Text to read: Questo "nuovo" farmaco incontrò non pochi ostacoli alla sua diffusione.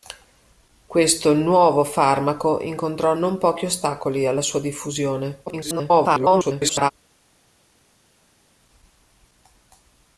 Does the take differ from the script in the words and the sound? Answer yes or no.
yes